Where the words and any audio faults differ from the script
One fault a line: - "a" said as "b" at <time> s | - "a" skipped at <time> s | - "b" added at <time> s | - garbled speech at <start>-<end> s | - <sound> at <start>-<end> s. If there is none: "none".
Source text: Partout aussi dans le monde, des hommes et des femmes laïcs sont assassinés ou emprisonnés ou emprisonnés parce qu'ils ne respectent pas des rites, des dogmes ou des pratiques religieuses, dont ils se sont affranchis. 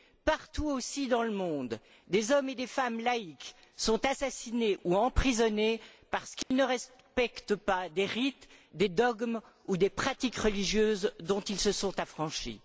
- "ou emprisonnés" skipped at 5.8 s
- dropout at 6.4-6.5 s